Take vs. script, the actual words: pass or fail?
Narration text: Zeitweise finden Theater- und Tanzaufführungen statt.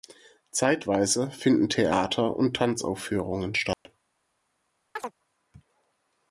pass